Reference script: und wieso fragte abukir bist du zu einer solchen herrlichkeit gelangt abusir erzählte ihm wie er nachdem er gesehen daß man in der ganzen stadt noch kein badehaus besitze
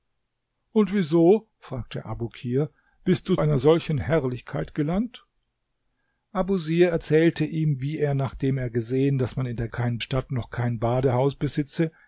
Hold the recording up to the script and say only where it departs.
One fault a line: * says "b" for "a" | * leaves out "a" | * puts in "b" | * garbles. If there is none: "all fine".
* leaves out "zu"
* says "kein" for "ganzen"